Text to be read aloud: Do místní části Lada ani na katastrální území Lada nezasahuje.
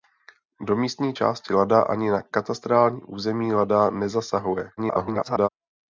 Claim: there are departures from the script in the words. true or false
true